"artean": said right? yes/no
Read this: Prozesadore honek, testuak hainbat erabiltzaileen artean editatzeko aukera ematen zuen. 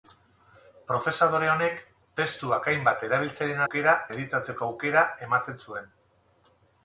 no